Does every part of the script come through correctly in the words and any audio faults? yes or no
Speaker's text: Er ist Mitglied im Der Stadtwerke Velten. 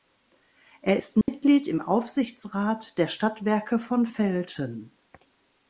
no